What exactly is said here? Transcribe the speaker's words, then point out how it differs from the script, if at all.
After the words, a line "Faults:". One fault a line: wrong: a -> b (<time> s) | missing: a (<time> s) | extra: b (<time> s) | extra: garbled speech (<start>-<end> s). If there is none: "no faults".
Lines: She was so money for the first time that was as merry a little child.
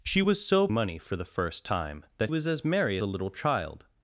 She was so money for the first time that was as merry a little child.
Faults:
no faults